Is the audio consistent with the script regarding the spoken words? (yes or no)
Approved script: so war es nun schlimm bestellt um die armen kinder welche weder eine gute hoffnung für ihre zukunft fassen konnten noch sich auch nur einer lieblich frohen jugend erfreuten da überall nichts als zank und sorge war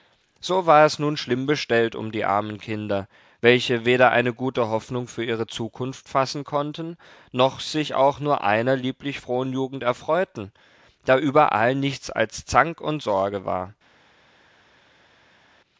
yes